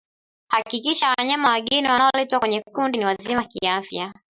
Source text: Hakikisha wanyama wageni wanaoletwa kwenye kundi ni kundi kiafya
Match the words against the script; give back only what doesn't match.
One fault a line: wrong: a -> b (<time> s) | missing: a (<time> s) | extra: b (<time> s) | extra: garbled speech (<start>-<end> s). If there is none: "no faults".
wrong: kundi -> wazima (3.0 s)